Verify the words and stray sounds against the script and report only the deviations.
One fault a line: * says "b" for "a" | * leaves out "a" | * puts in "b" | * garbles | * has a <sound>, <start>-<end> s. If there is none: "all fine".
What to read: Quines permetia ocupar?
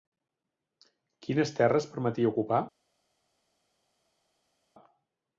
* puts in "terres"